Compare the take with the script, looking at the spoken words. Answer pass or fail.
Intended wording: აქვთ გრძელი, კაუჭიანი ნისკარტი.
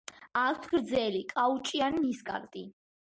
pass